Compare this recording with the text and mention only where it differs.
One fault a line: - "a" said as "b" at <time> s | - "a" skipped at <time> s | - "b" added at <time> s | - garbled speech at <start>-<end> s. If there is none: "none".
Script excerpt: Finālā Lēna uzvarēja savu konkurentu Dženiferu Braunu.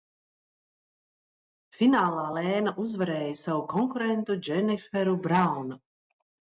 none